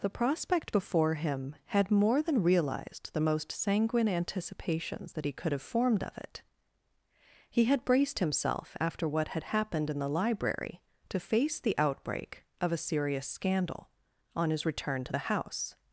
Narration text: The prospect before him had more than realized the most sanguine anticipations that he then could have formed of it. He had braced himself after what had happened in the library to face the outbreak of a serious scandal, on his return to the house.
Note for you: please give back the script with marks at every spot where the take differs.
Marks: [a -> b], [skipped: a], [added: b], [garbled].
The prospect before him had more than realized the most sanguine anticipations that he [skipped: then] could have formed of it. He had braced himself after what had happened in the library to face the outbreak of a serious scandal, on his return to the house.